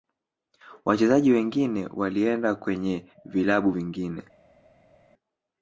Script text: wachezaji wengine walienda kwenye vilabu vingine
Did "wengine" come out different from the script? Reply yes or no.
no